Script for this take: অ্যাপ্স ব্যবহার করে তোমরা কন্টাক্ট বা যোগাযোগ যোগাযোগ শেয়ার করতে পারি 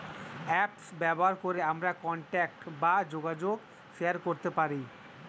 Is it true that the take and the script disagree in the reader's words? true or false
true